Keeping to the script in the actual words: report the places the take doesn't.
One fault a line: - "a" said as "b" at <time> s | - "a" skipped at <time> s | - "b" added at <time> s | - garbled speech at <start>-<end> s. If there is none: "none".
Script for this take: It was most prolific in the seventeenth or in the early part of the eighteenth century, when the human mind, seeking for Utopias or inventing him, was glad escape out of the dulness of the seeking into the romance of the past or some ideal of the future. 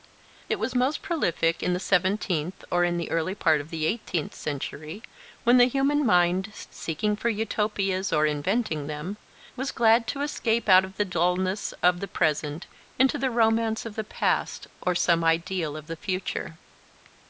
- "him" said as "them" at 8.9 s
- "to" added at 10.1 s
- "seeking" said as "present" at 12.1 s